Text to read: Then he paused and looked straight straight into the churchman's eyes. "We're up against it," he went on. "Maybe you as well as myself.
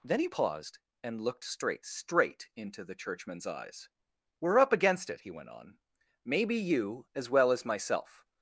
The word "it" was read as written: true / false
true